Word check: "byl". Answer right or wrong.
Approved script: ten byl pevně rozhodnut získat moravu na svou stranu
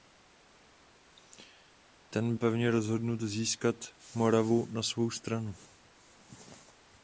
wrong